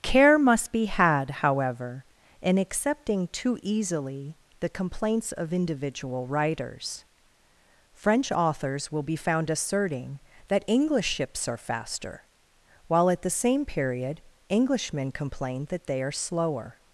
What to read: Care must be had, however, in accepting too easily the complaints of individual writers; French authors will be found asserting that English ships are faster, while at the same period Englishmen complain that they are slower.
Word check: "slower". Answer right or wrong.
right